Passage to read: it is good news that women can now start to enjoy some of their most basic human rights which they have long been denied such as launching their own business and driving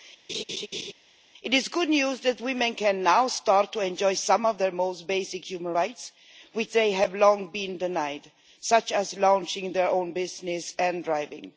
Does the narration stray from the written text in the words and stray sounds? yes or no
yes